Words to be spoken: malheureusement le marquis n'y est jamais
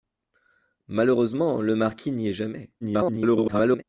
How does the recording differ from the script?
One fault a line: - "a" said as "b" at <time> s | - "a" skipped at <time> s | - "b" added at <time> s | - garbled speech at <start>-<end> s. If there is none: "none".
- garbled speech at 2.8-3.8 s